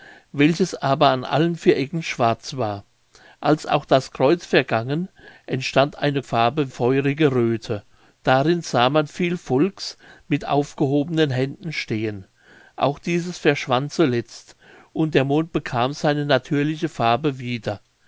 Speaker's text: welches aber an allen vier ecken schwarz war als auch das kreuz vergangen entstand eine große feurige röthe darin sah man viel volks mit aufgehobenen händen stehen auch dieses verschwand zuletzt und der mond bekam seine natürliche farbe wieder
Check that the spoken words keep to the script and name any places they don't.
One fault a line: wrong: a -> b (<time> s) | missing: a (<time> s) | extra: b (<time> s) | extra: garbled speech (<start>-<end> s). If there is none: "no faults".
wrong: große -> farbe (6.2 s)